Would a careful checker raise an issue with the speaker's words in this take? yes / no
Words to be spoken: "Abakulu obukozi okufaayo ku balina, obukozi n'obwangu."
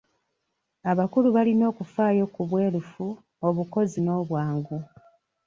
yes